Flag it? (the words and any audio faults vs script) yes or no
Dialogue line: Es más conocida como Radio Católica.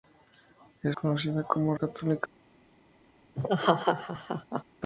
yes